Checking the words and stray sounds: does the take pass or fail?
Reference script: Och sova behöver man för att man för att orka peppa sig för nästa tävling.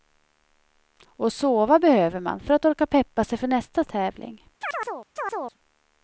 fail